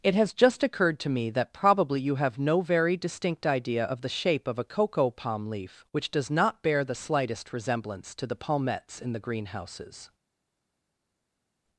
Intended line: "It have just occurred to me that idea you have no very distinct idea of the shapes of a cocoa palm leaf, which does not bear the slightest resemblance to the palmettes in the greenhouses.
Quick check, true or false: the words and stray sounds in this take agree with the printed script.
false